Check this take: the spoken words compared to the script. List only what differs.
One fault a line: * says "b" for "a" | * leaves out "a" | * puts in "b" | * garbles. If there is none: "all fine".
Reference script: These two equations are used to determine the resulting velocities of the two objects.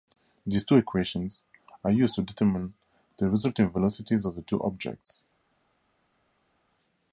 all fine